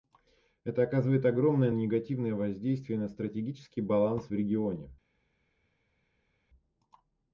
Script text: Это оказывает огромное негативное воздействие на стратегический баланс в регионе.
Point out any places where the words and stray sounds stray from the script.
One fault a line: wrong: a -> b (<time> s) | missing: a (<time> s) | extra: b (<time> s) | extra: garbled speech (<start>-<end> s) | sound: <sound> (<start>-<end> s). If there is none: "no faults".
no faults